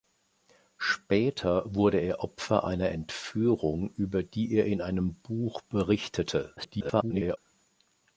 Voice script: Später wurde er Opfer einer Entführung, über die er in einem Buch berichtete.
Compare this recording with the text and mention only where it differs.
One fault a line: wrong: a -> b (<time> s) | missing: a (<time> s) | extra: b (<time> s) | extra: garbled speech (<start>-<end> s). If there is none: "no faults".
extra: garbled speech (6.6-7.4 s)